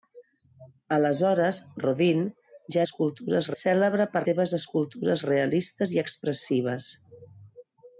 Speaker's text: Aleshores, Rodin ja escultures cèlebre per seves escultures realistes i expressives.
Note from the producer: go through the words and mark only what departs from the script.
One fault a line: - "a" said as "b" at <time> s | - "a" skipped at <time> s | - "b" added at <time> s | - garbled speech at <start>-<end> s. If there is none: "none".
none